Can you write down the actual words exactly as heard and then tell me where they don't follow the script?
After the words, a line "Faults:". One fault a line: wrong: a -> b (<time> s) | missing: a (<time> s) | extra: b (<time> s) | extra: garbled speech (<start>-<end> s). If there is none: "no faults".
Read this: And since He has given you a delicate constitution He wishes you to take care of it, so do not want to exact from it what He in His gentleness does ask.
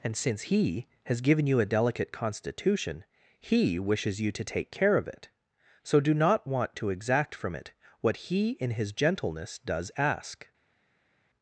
And since He has given you a delicate constitution He wishes you to take care of it, so do not want to exact from it what He in His gentleness does ask.
Faults:
no faults